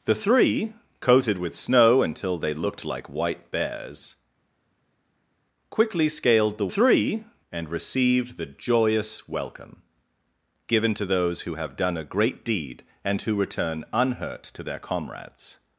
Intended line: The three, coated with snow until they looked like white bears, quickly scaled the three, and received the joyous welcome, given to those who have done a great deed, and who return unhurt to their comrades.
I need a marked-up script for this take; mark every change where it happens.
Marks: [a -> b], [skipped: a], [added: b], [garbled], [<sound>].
The three, coated with snow until they looked like white bears, quickly scaled the three, and received the joyous welcome, given to those who have done a great deed, and who return unhurt to their comrades.